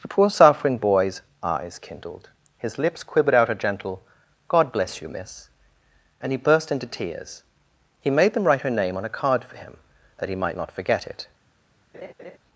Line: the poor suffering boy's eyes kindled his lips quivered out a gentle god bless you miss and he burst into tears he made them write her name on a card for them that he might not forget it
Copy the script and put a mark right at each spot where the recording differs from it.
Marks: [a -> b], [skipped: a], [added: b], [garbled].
the poor suffering boy's eyes kindled his lips quivered out a gentle god bless you miss and he burst into tears he made them write her name on a card for [them -> him] that he might not forget it